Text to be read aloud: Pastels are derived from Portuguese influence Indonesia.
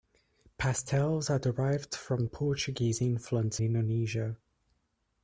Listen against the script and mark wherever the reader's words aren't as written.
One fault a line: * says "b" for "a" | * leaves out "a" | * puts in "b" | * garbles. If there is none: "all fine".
all fine